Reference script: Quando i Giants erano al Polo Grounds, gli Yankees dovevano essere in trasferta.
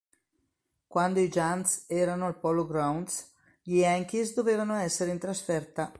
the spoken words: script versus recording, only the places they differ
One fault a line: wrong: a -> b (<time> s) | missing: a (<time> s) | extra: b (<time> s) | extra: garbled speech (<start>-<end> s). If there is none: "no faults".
no faults